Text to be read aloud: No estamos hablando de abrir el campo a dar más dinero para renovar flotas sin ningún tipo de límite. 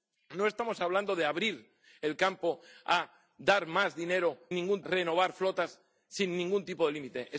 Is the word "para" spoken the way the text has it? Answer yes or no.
no